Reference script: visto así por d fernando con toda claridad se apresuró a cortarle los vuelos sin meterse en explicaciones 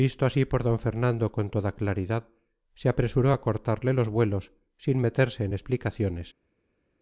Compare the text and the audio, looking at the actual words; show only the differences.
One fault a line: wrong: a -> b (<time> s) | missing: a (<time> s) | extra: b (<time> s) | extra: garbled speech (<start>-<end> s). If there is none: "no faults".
no faults